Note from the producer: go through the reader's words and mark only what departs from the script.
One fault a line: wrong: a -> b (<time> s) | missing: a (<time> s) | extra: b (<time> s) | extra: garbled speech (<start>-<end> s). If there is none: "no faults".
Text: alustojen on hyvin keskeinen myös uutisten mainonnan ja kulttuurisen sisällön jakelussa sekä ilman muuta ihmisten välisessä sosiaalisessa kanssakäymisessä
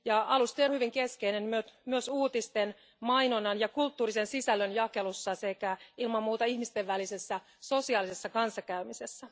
no faults